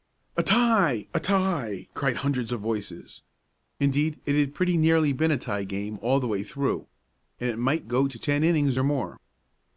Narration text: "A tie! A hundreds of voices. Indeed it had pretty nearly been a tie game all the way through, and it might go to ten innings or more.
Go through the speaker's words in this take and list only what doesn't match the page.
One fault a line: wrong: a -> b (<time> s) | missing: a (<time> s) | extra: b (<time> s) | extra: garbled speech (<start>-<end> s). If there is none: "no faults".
extra: tie cried (1.2 s)